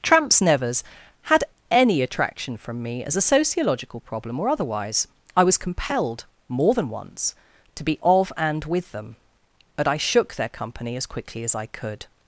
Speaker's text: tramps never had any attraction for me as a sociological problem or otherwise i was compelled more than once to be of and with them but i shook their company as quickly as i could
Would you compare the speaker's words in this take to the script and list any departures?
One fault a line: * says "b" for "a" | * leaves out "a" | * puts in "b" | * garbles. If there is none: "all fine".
* says "nevers" for "never"
* says "from" for "for"